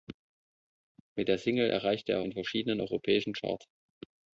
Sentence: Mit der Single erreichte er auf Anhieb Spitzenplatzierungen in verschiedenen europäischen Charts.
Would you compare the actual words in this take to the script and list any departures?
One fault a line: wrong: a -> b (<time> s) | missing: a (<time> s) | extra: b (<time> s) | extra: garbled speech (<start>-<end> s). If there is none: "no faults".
missing: auf Anhieb Spitzenplatzierungen (2.2 s)